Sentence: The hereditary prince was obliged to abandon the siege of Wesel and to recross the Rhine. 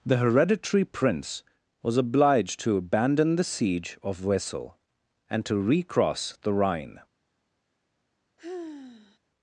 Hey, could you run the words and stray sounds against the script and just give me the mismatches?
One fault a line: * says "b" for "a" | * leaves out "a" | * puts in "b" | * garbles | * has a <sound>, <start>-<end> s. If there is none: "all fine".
* has a sigh, 8.4-9.2 s